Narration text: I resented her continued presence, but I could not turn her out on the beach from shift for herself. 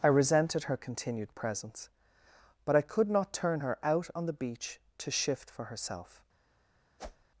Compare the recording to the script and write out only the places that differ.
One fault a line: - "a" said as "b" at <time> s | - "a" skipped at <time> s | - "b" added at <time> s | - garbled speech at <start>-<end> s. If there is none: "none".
- "from" said as "to" at 5.0 s